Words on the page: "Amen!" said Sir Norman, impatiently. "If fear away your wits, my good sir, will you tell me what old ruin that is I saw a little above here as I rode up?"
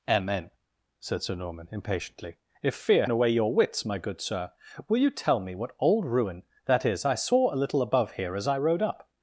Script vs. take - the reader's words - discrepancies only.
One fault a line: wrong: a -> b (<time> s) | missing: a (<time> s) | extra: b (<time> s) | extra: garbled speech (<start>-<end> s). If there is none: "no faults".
no faults